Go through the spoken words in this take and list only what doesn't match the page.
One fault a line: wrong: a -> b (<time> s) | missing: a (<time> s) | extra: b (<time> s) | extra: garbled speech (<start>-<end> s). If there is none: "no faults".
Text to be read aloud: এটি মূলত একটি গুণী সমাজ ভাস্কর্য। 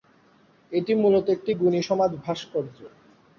no faults